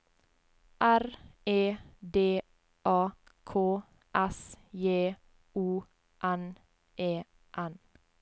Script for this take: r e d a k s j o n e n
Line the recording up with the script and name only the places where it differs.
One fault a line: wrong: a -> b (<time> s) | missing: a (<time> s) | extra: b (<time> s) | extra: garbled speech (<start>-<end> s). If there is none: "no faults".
no faults